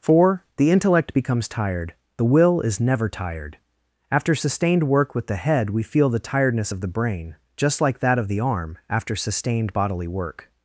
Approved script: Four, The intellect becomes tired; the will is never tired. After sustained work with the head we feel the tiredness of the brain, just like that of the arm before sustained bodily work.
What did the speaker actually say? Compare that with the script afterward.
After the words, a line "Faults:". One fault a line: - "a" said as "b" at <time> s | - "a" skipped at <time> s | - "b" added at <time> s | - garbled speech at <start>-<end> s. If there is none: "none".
Four, The intellect becomes tired; the will is never tired. After sustained work with the head we feel the tiredness of the brain, just like that of the arm after sustained bodily work.
Faults:
- "before" said as "after" at 8.9 s